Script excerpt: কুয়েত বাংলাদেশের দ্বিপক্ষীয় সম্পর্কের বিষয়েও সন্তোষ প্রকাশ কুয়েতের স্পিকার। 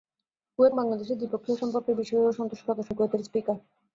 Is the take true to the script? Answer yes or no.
yes